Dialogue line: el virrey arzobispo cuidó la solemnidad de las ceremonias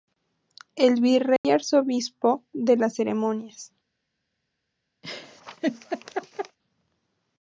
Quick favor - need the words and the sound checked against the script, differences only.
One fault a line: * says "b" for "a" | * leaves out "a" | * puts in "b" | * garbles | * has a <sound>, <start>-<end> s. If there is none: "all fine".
* has a dropout, 1.4-1.4 s
* leaves out "cuidó la solemnidad"
* has a laugh, 5.0-6.6 s